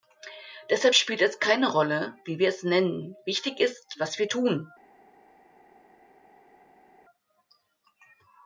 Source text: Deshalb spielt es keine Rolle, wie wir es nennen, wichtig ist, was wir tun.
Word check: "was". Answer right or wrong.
right